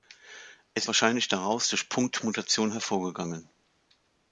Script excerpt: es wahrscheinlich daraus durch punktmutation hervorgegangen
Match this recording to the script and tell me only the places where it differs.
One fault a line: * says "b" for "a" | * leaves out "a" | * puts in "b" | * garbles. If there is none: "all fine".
all fine